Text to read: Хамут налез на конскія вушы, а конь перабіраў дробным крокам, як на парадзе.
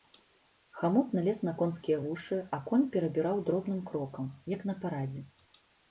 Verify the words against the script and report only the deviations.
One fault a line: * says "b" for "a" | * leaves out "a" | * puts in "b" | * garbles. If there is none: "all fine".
all fine